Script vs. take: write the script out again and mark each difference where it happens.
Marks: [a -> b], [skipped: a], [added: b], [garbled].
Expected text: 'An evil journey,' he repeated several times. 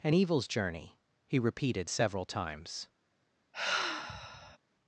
'An [evil -> evils] journey,' he repeated several times.